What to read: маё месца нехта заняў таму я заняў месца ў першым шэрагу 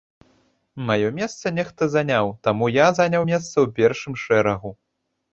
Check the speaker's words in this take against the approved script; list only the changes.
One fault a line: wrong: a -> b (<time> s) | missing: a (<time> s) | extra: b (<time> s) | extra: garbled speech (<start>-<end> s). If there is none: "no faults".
no faults